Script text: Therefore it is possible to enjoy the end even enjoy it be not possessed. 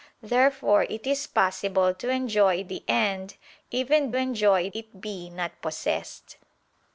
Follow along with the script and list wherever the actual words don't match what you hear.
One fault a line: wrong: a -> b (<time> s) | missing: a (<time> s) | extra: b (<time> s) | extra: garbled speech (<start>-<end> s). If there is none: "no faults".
no faults